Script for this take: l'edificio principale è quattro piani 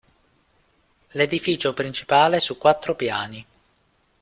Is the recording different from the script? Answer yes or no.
yes